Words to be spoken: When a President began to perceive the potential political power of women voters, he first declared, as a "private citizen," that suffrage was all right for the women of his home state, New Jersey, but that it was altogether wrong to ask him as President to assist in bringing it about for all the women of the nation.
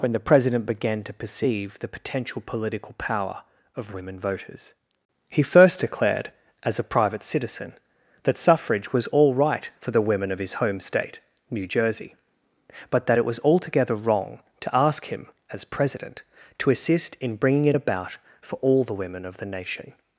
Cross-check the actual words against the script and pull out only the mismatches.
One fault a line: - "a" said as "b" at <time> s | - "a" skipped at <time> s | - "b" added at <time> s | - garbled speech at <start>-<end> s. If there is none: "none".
- "a" said as "the" at 0.1 s